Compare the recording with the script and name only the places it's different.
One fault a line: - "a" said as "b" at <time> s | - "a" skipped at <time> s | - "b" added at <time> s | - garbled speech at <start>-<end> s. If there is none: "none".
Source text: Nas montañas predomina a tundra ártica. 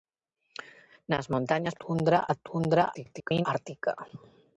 - "predomina" said as "tundra" at 1.8 s
- garbled speech at 2.9-3.5 s